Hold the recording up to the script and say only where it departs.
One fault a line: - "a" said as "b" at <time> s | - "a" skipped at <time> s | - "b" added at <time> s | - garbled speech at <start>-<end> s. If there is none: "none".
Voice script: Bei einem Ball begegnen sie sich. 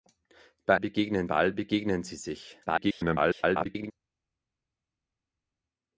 - "einem" said as "begegnen" at 0.8 s
- garbled speech at 2.7-3.9 s